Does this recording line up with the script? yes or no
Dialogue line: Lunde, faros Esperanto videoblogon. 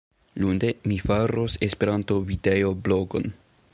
no